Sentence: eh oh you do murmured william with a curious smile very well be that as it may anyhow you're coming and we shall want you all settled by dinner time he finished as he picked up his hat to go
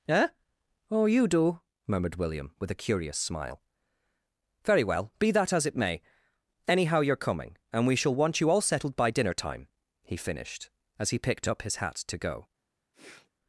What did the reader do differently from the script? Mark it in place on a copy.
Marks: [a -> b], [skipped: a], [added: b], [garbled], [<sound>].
eh oh you do murmured william with a curious smile very well be that as it may anyhow you're coming and we shall want you all settled by dinner time he finished as he picked up his hat to go [sniff]